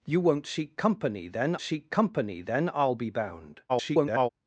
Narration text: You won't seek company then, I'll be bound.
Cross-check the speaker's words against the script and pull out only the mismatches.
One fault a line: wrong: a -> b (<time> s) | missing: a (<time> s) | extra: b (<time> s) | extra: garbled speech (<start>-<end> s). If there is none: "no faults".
extra: seek company then (1.6 s)
extra: garbled speech (3.7-4.3 s)